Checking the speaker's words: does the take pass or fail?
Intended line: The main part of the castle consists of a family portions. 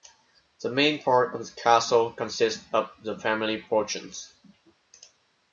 fail